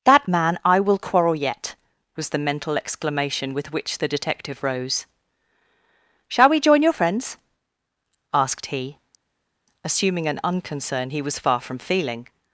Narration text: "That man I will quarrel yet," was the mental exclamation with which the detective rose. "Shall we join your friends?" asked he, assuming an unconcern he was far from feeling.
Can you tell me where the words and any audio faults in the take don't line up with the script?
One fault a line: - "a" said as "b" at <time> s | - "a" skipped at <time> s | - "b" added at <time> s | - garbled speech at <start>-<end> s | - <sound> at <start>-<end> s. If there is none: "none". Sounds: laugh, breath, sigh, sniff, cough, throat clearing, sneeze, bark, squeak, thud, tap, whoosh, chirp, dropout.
none